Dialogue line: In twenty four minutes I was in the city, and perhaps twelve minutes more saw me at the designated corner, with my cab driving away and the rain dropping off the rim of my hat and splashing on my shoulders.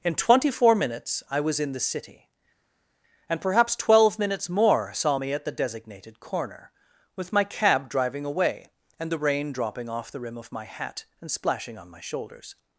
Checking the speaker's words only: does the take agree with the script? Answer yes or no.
yes